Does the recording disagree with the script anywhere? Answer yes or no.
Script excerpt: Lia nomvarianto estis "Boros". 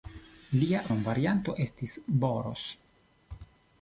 no